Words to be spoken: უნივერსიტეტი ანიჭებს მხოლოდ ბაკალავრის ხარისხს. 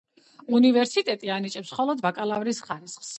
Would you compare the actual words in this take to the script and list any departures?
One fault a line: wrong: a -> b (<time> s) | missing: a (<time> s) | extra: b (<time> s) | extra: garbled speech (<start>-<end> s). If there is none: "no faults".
no faults